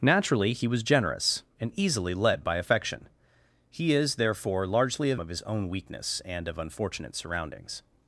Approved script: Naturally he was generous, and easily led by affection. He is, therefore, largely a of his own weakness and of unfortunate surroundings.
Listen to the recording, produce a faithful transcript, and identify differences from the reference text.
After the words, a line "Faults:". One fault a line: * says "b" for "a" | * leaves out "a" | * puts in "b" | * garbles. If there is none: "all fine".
Naturally he was generous, and easily led by affection. He is, therefore, largely a of his own weakness and of unfortunate surroundings.
Faults:
all fine